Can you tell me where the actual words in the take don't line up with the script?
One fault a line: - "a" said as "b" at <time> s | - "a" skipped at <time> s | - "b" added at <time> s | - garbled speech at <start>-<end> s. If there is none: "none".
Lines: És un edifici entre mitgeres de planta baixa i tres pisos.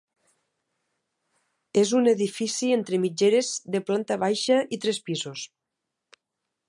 none